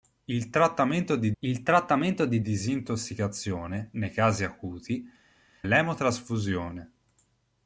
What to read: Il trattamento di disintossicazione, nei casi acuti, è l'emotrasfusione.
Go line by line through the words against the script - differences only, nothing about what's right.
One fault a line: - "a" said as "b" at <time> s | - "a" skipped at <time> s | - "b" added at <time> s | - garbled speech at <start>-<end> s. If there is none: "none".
- "il trattamento di" added at 1.4 s
- "è" skipped at 5.1 s